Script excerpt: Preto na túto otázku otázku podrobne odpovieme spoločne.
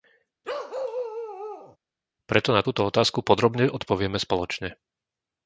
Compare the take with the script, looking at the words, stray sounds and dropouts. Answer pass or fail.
fail